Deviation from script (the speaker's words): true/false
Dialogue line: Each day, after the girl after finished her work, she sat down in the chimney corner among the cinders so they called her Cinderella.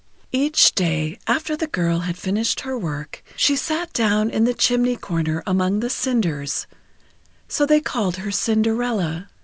true